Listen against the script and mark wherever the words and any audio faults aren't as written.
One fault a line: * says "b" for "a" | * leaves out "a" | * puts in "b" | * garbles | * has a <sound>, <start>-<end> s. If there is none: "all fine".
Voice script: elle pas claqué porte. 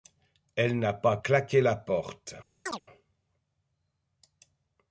* puts in "n'a"
* puts in "la"
* has a chirp, 2.6-2.8 s